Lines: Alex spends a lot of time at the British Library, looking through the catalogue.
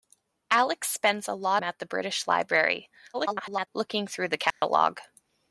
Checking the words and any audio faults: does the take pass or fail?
fail